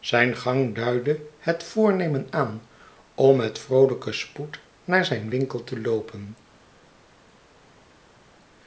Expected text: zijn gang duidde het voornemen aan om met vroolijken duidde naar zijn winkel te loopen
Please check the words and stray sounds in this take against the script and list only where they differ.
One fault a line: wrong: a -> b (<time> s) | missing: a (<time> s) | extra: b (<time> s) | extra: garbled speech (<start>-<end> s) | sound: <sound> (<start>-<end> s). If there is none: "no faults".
wrong: duidde -> spoed (4.1 s)